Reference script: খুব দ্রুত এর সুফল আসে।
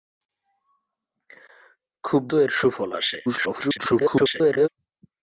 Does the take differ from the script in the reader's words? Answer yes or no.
yes